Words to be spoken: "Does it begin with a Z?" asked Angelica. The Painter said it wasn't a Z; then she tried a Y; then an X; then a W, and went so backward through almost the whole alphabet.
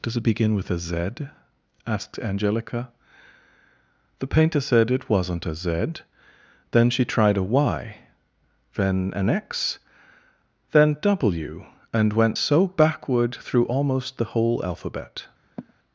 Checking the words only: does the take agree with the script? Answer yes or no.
no